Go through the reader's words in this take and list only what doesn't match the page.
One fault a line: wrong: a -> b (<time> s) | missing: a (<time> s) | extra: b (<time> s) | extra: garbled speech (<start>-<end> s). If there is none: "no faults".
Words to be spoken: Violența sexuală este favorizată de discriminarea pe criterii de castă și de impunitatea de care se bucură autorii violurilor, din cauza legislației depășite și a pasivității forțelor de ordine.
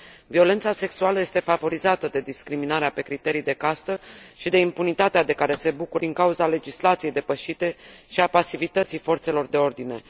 missing: autorii violurilor (6.0 s)